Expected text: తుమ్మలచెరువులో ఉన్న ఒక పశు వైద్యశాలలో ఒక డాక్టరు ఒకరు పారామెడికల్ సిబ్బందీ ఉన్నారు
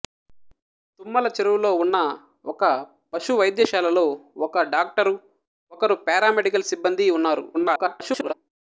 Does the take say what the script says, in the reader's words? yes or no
no